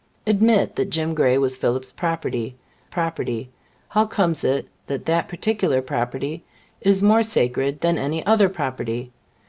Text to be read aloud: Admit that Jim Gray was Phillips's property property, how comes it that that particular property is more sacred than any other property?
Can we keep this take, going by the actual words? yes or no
yes